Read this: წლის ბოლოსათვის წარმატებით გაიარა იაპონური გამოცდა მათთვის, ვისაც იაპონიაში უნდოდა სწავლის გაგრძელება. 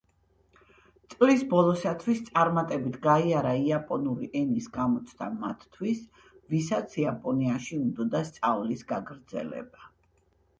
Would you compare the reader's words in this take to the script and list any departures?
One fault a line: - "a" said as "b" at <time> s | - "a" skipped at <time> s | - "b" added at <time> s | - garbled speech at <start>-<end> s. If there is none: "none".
- "ენის" added at 4.4 s